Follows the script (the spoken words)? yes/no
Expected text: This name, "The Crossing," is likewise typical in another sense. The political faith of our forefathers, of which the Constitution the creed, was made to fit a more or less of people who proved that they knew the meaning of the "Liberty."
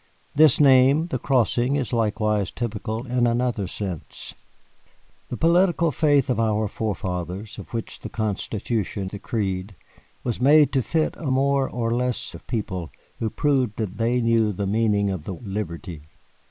yes